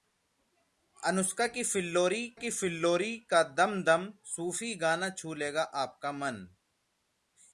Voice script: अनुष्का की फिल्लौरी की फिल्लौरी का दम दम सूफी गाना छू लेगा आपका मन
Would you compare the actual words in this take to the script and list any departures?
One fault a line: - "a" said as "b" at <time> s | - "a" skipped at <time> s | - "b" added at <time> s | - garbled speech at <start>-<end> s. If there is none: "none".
none